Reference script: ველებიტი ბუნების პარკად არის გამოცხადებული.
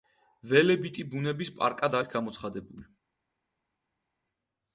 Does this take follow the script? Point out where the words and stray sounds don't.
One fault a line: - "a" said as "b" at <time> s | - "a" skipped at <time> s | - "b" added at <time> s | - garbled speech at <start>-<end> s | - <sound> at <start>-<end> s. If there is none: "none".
none